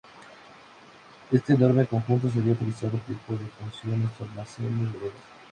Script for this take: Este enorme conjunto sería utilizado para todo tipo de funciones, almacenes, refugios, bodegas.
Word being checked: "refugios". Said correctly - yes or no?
no